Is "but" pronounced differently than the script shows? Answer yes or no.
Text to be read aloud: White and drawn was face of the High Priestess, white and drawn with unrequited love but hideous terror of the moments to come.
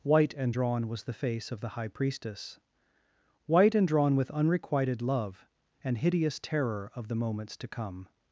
yes